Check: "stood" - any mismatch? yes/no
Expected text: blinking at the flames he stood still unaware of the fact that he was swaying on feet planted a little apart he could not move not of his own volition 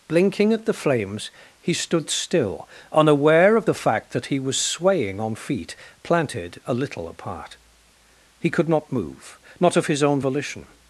no